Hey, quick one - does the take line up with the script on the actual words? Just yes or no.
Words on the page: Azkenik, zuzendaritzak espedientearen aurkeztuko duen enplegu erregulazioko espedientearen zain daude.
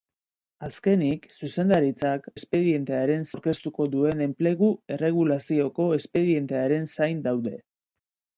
yes